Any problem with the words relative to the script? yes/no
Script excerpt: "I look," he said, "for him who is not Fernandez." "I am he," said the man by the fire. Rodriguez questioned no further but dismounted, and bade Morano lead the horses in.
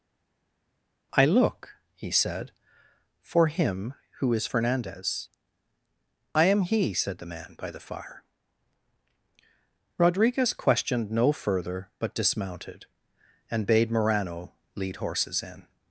yes